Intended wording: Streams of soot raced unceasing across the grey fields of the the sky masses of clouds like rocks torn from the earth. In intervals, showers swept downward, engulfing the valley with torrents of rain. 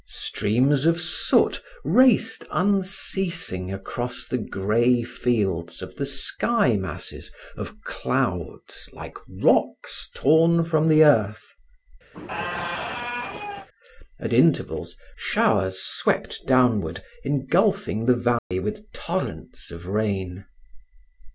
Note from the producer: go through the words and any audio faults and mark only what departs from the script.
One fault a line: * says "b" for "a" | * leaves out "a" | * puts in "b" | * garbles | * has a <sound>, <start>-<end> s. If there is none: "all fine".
* leaves out "the"
* has a squeak, 12.1-13.7 s
* says "At" for "In"
* has a dropout, 18.4-18.5 s